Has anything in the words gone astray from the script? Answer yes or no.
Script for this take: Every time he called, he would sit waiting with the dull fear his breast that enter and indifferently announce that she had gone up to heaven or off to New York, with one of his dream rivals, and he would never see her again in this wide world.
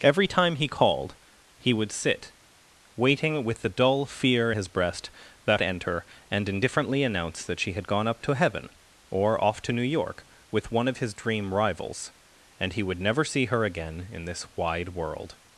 no